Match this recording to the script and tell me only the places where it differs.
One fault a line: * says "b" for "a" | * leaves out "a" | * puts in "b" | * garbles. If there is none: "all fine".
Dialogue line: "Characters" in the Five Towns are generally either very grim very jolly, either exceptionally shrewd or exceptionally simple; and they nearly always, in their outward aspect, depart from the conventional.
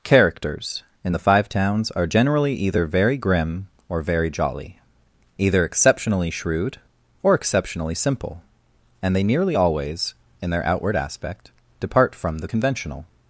* puts in "or"